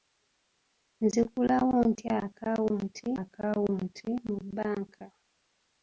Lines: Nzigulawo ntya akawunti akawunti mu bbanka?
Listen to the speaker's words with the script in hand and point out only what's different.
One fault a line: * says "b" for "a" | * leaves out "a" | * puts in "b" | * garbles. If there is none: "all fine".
all fine